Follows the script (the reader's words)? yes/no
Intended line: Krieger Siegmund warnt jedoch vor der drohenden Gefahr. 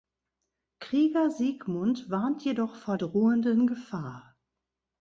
no